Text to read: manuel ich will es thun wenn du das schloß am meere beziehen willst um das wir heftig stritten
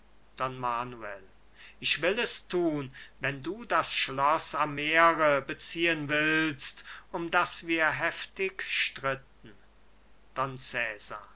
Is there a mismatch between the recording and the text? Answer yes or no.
no